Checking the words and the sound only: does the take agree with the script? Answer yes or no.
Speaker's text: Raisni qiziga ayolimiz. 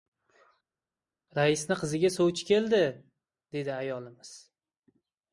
no